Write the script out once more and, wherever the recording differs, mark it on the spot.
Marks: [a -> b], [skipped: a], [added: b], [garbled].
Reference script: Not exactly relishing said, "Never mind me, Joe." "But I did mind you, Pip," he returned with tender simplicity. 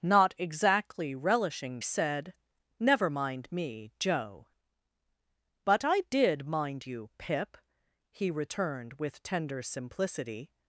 Not exactly relishing said, "Never mind me, Joe." "But I did mind you, Pip," he returned with tender simplicity.